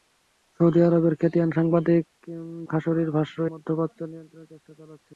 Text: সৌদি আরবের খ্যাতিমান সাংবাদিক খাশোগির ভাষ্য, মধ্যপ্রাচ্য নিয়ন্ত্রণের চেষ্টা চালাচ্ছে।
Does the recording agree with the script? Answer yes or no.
yes